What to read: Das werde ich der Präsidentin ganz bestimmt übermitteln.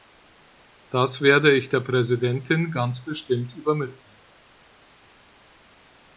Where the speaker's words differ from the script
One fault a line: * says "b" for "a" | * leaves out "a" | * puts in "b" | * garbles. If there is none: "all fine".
all fine